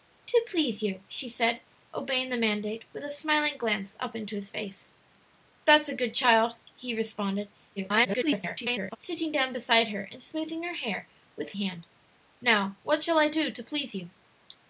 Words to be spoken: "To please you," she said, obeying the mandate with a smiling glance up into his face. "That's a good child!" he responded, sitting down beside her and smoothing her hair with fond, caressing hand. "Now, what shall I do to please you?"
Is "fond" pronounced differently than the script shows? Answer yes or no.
yes